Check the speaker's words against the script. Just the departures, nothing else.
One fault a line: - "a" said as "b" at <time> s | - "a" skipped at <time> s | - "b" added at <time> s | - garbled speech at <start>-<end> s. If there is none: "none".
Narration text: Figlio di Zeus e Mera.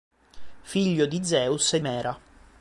none